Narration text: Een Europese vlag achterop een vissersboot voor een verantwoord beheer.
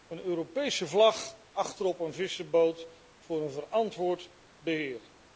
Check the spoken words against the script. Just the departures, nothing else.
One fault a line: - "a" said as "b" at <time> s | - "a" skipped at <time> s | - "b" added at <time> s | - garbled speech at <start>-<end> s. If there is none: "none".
none